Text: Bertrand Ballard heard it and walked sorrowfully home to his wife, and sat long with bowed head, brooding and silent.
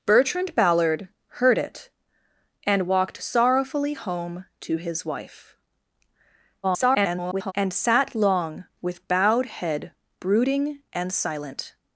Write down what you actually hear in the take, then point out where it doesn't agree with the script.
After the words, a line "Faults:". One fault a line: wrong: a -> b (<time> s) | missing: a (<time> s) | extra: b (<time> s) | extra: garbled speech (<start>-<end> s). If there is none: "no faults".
Bertrand Ballard heard it and walked sorrowfully home to his wife, [garbled] and sat long with bowed head, brooding and silent.
Faults:
extra: garbled speech (6.6-7.5 s)